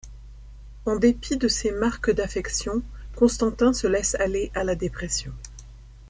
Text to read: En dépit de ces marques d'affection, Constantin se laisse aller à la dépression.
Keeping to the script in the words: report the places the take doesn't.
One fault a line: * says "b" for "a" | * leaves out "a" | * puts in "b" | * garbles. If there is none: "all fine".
all fine